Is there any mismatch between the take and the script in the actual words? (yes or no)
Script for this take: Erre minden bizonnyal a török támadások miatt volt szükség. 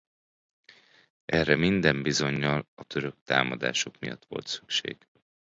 no